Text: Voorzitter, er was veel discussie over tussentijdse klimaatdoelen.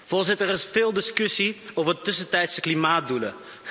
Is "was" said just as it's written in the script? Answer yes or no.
no